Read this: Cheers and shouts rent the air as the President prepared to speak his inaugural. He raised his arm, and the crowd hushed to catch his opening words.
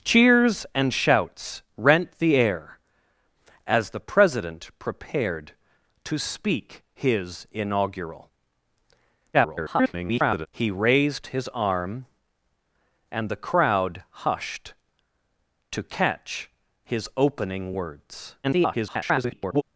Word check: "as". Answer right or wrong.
right